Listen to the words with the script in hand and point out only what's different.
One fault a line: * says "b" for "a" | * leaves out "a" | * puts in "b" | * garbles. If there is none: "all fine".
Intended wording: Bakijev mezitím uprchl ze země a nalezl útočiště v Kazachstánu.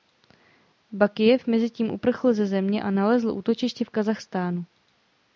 all fine